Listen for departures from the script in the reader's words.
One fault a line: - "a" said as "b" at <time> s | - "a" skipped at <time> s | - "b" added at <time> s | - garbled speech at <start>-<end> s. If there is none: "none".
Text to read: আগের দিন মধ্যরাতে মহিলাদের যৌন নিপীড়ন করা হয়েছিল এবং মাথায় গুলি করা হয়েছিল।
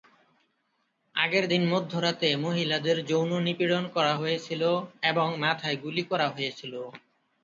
none